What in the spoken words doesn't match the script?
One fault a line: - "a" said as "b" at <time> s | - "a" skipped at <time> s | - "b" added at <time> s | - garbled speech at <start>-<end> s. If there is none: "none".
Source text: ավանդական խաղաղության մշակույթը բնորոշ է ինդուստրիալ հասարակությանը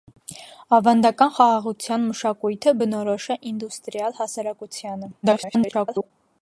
- garbled speech at 5.2-6.1 s